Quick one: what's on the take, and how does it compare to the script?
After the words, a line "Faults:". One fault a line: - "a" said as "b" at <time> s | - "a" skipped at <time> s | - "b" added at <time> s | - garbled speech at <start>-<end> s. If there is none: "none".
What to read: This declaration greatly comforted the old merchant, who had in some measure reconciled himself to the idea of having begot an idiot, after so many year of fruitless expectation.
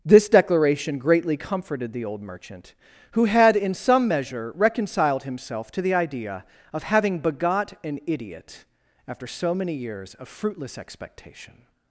This declaration greatly comforted the old merchant, who had in some measure reconciled himself to the idea of having begot an idiot, after so many years of fruitless expectation.
Faults:
- "year" said as "years" at 9.7 s